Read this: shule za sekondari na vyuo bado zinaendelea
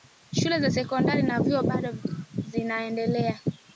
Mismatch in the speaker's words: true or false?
false